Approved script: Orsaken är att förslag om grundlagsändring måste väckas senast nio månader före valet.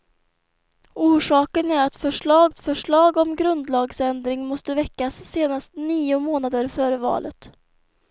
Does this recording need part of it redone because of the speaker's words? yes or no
yes